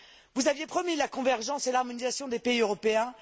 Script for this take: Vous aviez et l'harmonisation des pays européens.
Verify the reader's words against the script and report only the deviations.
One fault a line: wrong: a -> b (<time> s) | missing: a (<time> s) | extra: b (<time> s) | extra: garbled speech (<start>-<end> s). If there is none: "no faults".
extra: promis la convergence (0.6 s)